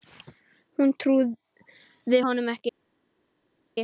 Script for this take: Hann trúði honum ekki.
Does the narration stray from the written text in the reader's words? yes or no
yes